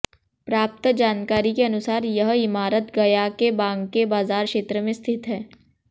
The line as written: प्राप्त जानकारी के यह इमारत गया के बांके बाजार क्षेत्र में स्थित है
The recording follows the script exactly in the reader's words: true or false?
false